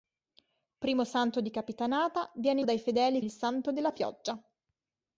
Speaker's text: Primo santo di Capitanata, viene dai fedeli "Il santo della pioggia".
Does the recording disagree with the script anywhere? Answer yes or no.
no